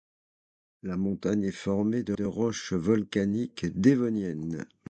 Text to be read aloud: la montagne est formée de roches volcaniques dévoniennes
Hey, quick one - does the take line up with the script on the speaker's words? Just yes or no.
no